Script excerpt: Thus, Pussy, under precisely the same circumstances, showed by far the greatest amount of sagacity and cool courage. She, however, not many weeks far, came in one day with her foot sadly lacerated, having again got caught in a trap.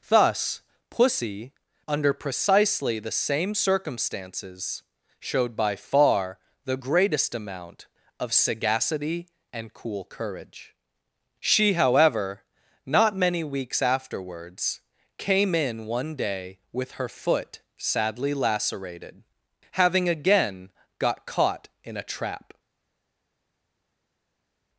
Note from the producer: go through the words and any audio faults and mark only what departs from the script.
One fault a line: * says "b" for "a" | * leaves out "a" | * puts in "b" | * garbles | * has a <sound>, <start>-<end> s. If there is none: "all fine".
* says "afterwards" for "far"